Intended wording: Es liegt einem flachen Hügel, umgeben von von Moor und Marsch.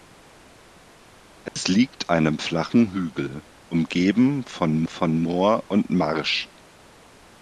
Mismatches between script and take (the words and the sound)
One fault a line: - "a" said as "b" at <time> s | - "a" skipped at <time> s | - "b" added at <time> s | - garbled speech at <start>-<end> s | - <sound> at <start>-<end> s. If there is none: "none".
- dropout at 1.5-1.6 s